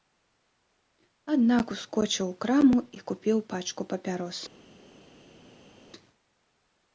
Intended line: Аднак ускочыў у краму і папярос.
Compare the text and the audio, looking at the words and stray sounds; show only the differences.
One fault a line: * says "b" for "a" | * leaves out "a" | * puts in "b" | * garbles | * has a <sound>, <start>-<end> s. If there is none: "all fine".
* puts in "купіў пачку"